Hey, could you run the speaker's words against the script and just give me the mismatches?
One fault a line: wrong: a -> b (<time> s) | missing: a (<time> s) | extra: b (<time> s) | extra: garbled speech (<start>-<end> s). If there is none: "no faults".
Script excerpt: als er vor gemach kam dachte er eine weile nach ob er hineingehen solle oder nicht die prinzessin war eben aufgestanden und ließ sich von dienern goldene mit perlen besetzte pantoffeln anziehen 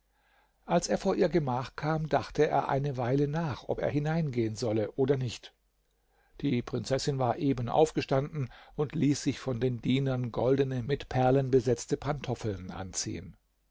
extra: ihr (1.1 s)
extra: den (9.6 s)